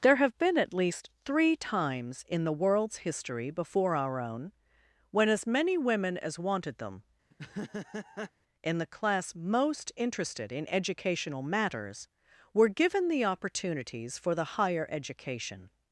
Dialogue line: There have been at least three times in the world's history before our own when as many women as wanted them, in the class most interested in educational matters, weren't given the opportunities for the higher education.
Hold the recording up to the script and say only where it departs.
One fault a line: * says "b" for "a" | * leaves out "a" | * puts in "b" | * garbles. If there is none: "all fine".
* says "were" for "weren't"